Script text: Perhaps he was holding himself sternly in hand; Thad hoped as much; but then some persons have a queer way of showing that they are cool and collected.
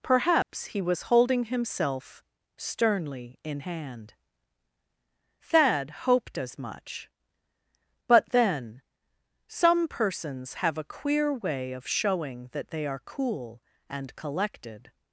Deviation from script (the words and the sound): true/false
true